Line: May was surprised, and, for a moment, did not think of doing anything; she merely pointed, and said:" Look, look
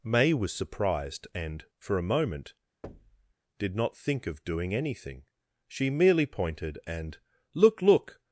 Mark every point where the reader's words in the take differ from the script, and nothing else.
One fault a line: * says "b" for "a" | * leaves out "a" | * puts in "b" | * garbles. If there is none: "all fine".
* leaves out "said"